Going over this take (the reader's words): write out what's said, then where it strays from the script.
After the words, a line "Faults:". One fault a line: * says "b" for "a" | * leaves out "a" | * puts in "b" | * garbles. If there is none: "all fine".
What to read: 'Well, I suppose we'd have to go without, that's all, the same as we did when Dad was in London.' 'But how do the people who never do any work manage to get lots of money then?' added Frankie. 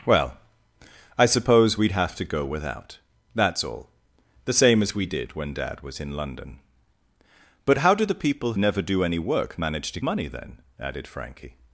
'Well, I suppose we'd have to go without, that's all, the same as we did when Dad was in London.' 'But how do the people never do any work manage to money then?' added Frankie.
Faults:
* leaves out "who"
* leaves out "get lots of"